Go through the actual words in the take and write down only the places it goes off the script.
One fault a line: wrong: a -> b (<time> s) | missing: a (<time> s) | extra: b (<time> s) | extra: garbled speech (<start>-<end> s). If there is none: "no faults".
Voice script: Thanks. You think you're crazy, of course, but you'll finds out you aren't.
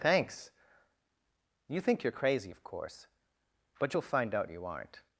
wrong: finds -> find (4.1 s)